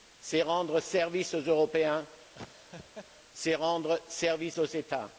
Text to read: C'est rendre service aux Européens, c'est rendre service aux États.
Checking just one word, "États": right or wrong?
right